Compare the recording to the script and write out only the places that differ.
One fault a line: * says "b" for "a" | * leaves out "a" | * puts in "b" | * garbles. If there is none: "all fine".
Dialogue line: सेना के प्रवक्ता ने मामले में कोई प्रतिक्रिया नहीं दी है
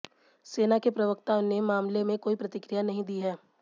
all fine